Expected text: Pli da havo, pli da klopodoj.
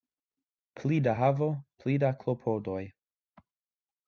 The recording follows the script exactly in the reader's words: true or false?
true